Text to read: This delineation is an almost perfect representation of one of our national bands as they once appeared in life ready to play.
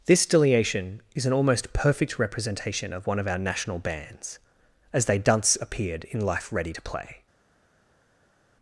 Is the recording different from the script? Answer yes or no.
yes